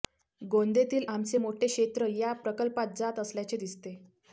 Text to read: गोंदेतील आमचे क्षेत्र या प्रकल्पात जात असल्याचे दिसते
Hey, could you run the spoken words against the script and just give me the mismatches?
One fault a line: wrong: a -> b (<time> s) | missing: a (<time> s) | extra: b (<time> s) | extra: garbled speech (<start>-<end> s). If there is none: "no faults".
extra: मोठे (1.3 s)